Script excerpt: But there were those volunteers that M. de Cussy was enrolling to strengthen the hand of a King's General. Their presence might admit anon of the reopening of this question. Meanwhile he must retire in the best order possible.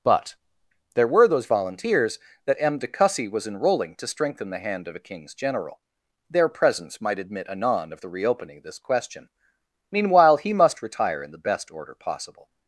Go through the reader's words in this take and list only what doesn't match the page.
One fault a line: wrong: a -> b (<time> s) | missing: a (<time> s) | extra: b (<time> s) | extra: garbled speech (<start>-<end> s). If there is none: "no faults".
no faults